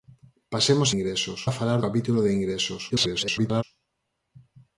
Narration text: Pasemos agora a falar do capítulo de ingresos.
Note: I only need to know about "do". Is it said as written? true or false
false